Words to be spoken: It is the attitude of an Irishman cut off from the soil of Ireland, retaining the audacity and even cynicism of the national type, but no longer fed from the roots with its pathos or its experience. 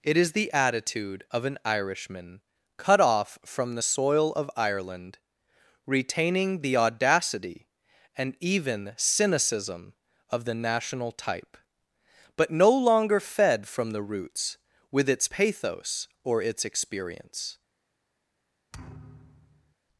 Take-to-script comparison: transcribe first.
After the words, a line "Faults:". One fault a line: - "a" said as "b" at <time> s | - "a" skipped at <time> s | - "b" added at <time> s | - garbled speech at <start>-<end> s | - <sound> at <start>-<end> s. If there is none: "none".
It is the attitude of an Irishman cut off from the soil of Ireland, retaining the audacity and even cynicism of the national type, but no longer fed from the roots with its pathos or its experience.
Faults:
- thud at 18.7-19.8 s